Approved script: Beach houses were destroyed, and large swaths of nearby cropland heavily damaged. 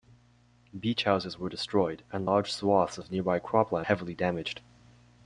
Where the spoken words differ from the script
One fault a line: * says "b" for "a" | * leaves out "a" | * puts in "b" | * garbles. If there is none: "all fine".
all fine